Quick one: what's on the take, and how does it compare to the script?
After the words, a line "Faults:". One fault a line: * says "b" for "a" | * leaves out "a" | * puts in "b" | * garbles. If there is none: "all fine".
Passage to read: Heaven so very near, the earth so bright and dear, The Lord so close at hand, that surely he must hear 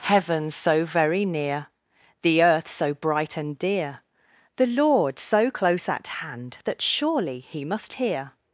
Heaven so very near, the earth so bright and dear, The Lord so close at hand, that surely he must hear
Faults:
all fine